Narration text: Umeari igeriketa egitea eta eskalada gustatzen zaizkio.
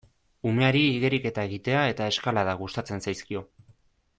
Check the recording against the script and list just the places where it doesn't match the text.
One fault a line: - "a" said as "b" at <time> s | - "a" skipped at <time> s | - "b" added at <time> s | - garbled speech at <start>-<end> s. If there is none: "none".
none